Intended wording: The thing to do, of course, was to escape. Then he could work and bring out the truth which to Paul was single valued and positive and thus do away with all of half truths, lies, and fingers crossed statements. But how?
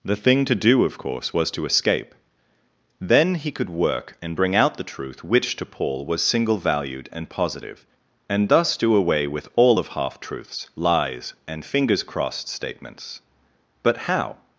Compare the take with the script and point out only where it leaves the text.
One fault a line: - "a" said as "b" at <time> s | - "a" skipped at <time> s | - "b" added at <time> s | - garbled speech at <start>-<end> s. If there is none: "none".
none